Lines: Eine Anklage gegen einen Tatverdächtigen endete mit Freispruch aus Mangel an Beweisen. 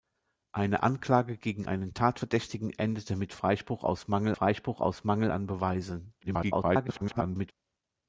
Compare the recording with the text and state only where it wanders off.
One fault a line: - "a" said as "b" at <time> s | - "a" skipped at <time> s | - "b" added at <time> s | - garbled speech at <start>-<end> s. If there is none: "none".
- "Freispruch aus Mangel" added at 4.3 s
- garbled speech at 6.2-7.5 s